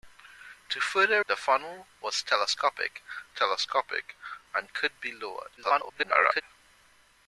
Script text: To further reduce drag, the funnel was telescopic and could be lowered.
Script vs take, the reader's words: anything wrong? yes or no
yes